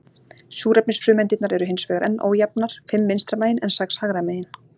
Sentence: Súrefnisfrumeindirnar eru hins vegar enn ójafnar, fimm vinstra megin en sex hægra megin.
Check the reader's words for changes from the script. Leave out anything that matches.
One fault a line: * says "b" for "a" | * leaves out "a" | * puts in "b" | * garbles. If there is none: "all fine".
all fine